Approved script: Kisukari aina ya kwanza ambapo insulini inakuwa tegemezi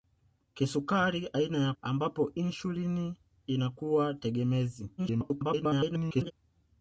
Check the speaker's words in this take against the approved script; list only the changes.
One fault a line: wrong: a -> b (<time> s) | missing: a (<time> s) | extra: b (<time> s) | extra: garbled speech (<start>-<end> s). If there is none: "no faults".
missing: kwanza (1.7 s)
extra: garbled speech (5.0-6.3 s)